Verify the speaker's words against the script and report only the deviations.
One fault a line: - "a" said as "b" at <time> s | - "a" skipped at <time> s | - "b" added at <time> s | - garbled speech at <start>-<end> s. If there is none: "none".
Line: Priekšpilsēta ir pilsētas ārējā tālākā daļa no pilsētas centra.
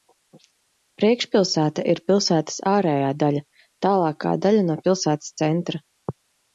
- "daļa" added at 3.3 s